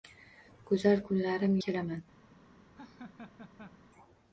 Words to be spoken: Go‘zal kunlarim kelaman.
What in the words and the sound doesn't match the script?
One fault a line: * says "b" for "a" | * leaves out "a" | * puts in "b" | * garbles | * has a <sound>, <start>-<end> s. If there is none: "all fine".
* has a laugh, 2.7-3.8 s